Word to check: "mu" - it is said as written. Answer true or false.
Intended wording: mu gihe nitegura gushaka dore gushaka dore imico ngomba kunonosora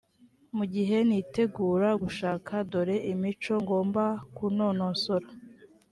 true